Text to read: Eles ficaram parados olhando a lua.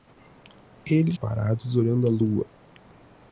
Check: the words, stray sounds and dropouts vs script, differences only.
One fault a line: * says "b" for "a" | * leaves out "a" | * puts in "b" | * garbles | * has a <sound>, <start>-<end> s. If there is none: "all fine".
* leaves out "ficaram"